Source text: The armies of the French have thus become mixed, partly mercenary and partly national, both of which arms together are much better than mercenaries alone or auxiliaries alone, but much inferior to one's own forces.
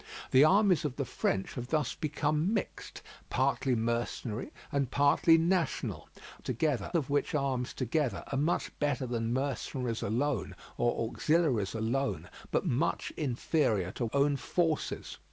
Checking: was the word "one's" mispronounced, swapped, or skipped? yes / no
yes